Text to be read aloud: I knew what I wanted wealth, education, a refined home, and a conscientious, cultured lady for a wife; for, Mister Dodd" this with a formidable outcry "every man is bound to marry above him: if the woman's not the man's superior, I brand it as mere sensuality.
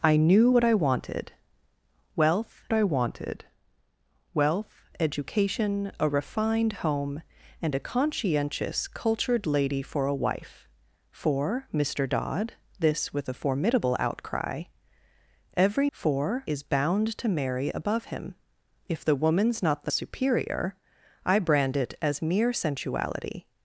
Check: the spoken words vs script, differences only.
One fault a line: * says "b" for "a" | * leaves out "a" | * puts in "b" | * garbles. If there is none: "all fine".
* puts in "I wanted wealth"
* says "for" for "man"
* leaves out "man's"